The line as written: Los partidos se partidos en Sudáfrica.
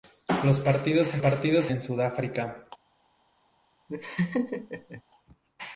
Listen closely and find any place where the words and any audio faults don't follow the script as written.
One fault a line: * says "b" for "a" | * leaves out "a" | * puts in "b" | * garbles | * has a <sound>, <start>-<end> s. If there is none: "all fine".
* has a laugh, 3.9-5.0 s